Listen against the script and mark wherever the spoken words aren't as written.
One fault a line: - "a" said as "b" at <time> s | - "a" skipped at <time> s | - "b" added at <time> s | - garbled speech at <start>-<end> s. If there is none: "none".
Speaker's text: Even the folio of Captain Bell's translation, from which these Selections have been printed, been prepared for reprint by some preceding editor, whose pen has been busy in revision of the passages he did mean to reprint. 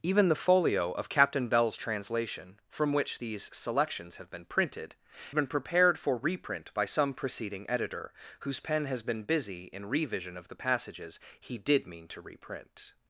none